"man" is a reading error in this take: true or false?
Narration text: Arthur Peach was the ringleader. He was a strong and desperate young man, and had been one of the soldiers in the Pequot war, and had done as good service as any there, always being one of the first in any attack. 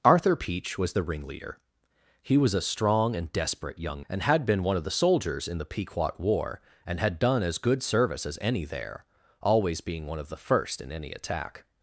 true